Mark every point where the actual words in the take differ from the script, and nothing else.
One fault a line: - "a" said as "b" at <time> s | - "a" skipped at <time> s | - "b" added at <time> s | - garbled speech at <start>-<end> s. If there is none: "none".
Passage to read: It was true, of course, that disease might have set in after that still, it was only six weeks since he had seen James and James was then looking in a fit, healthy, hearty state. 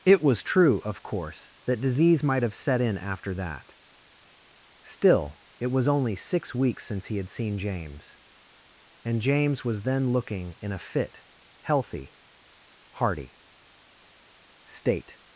none